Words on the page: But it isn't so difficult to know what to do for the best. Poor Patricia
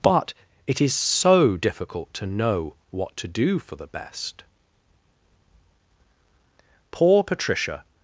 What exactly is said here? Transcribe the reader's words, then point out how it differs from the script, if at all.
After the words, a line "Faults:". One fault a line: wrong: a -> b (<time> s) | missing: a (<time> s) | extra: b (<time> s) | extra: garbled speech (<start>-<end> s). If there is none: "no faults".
But it is so difficult to know what to do for the best. Poor Patricia
Faults:
wrong: isn't -> is (0.8 s)